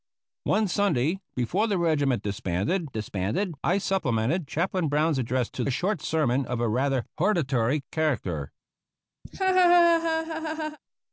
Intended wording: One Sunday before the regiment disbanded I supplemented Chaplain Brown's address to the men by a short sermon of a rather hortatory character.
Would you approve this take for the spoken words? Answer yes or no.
no